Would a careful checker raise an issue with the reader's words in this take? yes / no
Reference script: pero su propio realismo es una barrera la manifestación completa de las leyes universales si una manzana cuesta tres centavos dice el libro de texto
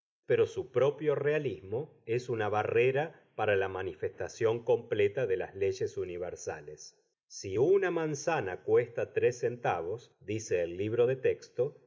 yes